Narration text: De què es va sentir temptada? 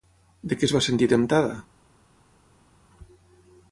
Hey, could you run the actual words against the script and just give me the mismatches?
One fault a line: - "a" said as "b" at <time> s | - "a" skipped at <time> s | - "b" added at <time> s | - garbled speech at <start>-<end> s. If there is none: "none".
none